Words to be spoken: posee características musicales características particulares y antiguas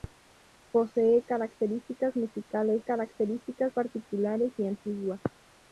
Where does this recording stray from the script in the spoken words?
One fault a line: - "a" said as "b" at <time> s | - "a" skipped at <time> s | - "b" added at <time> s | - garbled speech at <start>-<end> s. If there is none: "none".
none